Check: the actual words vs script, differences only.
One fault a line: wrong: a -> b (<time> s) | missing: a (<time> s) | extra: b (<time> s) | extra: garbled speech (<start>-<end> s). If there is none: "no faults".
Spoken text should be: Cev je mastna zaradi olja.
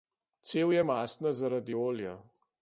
no faults